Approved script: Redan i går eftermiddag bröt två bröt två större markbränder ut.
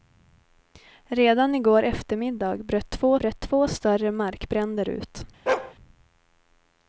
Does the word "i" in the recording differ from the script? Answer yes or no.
no